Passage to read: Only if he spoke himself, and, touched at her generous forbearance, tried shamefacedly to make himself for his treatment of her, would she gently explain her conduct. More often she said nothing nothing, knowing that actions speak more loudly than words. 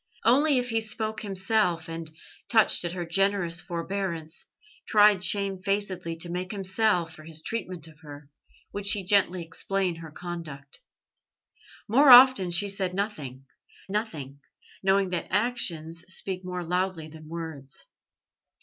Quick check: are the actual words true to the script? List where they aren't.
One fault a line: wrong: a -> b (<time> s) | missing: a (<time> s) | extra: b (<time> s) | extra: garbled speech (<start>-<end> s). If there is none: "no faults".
no faults